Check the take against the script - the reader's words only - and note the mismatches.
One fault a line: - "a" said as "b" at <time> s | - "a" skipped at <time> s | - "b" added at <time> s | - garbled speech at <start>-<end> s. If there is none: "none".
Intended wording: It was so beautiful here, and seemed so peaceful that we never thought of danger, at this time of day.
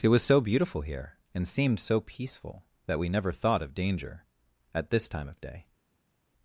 none